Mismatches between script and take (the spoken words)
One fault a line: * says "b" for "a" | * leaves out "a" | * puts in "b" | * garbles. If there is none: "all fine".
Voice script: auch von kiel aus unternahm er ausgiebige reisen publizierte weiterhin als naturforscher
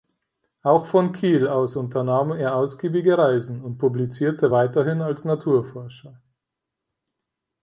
* puts in "und"